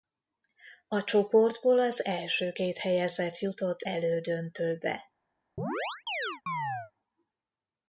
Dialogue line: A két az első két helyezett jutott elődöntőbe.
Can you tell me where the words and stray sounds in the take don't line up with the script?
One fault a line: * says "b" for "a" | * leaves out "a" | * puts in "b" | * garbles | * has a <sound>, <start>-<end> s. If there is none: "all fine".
* says "csoportból" for "két"
* has a chirp, 5.6-6.9 s